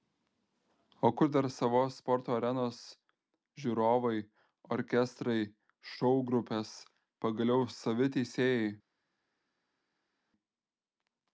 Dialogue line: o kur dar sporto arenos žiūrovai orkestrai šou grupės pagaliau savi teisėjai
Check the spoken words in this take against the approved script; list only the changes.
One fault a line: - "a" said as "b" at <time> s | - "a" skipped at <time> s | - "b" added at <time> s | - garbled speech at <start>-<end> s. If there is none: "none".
- "savos" added at 1.6 s